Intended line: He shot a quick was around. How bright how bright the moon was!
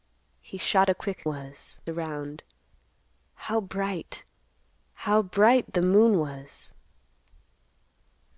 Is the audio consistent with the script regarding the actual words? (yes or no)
yes